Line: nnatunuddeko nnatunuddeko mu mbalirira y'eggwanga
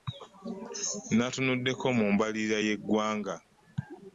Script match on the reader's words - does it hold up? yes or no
no